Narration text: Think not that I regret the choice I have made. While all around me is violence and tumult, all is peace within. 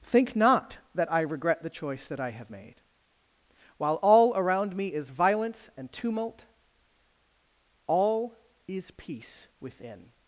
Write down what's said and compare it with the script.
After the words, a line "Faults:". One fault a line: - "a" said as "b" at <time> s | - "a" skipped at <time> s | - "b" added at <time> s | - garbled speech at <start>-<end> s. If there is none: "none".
Think not that I regret the choice that I have made. While all around me is violence and tumult, all is peace within.
Faults:
- "that" added at 2.1 s